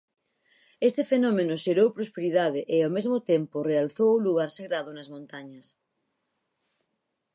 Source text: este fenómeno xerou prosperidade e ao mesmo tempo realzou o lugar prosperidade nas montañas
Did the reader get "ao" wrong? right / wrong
right